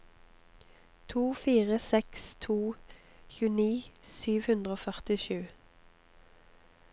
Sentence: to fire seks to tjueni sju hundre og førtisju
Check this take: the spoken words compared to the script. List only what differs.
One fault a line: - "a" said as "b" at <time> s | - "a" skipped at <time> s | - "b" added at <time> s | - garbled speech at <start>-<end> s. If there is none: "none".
none